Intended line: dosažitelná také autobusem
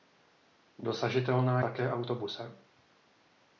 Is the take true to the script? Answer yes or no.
yes